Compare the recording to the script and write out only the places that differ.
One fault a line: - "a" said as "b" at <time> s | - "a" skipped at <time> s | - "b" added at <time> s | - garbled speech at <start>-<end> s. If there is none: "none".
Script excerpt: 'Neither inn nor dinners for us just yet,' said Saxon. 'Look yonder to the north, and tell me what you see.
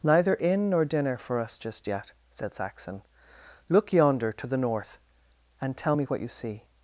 - "dinners" said as "dinner" at 0.8 s